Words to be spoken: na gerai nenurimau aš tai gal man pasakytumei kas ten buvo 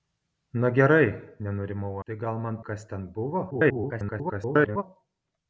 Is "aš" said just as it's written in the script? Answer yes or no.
no